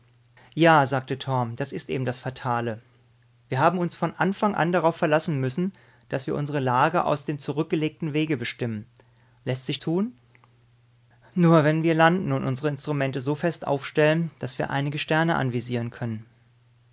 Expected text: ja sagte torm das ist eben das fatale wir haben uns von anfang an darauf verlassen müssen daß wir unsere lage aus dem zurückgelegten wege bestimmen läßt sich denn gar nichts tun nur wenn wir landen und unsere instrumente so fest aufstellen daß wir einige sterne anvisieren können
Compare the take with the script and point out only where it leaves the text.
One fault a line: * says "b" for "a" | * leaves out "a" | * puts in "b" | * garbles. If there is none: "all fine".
* leaves out "denn gar nichts"